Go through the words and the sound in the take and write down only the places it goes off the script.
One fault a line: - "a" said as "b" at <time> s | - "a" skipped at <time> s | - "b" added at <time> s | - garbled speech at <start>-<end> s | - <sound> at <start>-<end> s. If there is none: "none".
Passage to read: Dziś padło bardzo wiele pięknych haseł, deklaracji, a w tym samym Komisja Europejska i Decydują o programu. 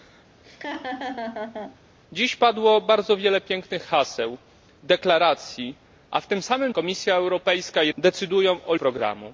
- laugh at 0.4-1.8 s